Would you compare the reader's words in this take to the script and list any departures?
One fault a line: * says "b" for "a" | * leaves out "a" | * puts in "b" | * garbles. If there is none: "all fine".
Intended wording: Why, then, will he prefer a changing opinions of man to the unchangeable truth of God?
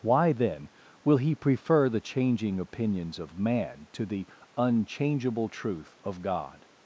* says "the" for "a"